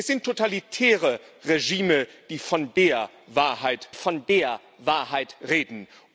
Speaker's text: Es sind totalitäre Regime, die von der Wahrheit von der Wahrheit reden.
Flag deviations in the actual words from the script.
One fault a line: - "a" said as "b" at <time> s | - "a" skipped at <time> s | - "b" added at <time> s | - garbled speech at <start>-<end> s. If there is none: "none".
none